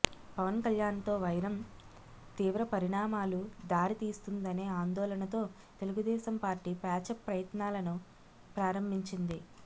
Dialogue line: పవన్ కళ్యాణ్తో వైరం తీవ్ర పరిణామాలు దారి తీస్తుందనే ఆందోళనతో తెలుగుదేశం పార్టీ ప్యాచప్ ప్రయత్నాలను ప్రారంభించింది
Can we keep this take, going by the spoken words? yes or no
yes